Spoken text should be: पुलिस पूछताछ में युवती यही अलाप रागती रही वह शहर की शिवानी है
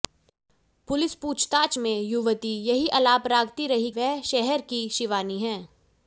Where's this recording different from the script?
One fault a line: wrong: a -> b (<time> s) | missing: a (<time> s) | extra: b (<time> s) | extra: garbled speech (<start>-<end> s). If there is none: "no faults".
no faults